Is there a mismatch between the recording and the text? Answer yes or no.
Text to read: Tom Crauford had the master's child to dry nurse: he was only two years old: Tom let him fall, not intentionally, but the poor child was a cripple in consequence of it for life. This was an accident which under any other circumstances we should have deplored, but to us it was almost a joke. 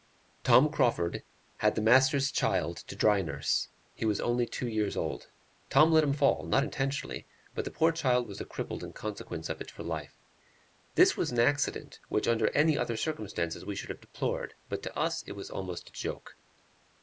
no